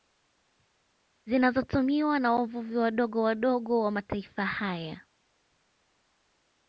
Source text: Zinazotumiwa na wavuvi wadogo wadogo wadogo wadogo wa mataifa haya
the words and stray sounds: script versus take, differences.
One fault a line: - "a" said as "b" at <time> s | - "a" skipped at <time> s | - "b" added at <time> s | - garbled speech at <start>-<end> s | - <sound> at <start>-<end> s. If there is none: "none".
- "wadogo wadogo" skipped at 3.8 s